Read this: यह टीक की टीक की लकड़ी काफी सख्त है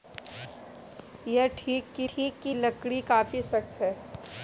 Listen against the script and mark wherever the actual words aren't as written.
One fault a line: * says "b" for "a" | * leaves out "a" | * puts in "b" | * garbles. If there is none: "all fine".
all fine